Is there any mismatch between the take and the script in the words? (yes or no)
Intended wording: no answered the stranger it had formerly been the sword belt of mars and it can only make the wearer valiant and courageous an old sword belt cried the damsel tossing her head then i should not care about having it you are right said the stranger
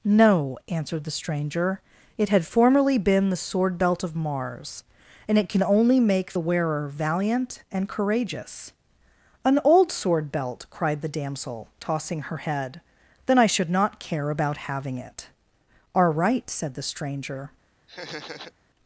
yes